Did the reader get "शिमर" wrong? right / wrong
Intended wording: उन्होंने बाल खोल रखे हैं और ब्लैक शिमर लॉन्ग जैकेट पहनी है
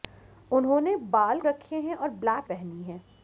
wrong